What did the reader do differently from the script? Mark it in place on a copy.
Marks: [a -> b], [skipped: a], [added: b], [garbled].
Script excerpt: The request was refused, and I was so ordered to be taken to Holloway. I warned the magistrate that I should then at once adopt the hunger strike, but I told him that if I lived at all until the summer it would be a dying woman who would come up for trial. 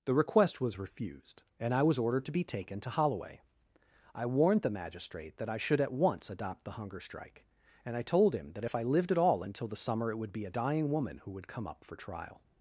The request was refused, and I was [skipped: so] ordered to be taken to Holloway. I warned the magistrate that I should [skipped: then] at once adopt the hunger strike, [but -> and] I told him that if I lived at all until the summer it would be a dying woman who would come up for trial.